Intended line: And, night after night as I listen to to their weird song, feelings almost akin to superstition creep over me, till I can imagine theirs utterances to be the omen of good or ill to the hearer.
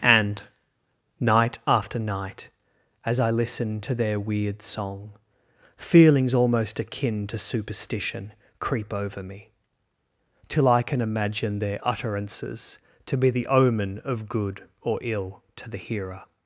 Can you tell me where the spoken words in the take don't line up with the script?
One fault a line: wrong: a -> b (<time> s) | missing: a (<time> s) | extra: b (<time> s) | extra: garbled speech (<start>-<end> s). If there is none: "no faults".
missing: to (4.0 s)
wrong: theirs -> their (11.6 s)